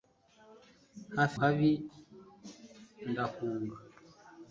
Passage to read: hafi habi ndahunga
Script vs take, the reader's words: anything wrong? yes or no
no